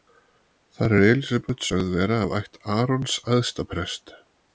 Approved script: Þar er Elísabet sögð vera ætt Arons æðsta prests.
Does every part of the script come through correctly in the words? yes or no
no